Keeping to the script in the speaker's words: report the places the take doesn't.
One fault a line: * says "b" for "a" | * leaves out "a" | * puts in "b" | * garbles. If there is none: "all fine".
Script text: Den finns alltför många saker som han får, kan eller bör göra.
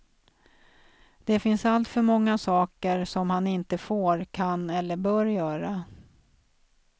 * says "Det" for "Den"
* puts in "inte"